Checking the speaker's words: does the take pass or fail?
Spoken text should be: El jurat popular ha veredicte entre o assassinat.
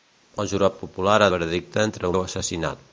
pass